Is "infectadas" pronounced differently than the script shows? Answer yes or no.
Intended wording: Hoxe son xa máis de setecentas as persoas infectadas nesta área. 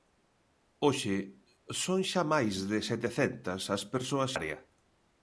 yes